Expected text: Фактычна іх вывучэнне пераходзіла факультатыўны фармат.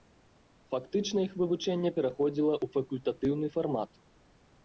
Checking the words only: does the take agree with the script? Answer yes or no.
no